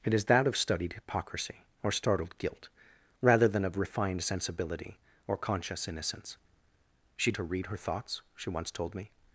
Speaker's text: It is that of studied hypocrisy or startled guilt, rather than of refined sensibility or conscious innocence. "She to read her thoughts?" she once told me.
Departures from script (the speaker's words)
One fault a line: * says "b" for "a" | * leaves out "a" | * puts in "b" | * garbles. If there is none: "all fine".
all fine